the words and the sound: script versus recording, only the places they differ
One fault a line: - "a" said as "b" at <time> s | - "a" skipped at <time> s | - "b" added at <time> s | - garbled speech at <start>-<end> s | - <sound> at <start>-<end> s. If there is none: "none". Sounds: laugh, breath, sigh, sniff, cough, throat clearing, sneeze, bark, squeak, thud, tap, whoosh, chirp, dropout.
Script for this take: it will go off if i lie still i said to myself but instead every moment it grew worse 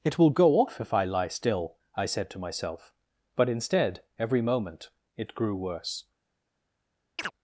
- chirp at 7.2-7.3 s